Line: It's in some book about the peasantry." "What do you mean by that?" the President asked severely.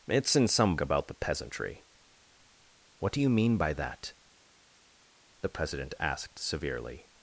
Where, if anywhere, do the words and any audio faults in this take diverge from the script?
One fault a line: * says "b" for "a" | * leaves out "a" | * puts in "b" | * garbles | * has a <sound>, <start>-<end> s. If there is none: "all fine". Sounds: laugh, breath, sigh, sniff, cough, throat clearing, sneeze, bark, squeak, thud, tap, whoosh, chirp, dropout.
* leaves out "book"